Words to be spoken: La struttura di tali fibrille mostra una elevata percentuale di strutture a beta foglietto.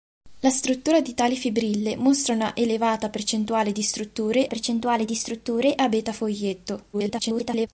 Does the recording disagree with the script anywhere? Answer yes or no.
yes